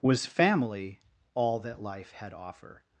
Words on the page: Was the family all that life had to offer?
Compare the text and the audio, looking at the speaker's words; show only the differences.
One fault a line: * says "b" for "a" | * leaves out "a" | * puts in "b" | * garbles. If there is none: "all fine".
* leaves out "the"
* leaves out "to"